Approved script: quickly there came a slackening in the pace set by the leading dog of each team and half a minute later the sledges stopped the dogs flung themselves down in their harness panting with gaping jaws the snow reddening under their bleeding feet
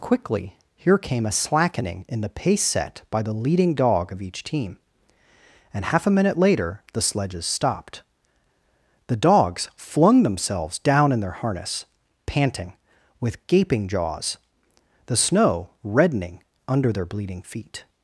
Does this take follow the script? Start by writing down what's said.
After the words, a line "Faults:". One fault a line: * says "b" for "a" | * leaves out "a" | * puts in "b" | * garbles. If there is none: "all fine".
quickly here came a slackening in the pace set by the leading dog of each team and half a minute later the sledges stopped the dogs flung themselves down in their harness panting with gaping jaws the snow reddening under their bleeding feet
Faults:
* says "here" for "there"